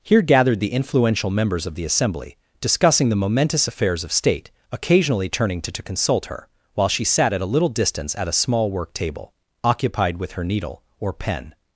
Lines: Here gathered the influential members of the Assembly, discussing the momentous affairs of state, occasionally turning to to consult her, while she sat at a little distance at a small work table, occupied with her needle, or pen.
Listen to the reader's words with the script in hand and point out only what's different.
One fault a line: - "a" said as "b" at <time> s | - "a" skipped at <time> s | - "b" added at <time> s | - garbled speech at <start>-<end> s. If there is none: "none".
none